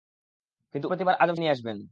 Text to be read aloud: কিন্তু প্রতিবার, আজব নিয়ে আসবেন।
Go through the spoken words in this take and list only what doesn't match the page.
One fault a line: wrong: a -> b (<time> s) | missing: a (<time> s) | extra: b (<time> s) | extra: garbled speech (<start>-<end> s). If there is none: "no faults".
no faults